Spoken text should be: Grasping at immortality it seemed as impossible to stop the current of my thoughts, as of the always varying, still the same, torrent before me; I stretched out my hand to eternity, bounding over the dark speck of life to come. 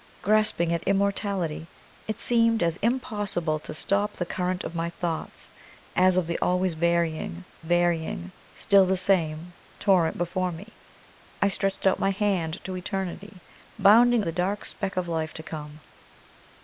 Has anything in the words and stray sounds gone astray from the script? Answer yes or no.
yes